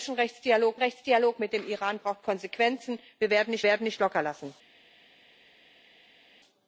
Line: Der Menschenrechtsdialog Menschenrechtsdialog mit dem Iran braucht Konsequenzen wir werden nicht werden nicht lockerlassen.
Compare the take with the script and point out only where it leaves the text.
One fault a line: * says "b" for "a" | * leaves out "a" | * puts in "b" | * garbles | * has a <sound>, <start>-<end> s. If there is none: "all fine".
all fine